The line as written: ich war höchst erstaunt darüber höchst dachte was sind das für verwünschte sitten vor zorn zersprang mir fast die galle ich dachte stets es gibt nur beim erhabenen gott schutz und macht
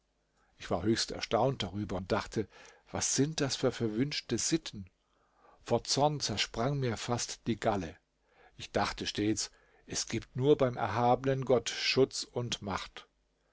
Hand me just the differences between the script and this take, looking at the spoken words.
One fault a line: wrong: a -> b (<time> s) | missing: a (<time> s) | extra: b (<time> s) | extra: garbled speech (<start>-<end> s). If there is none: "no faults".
wrong: höchst -> und (2.0 s)